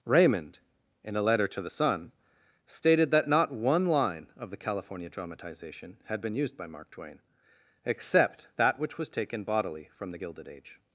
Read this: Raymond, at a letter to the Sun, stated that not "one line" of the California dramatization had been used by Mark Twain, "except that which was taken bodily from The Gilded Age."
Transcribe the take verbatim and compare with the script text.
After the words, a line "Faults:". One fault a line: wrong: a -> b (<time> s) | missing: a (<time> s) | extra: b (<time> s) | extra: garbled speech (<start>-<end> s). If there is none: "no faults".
Raymond, in a letter to the Sun, stated that not "one line" of the California dramatization had been used by Mark Twain, "except that which was taken bodily from The Gilded Age."
Faults:
wrong: at -> in (1.0 s)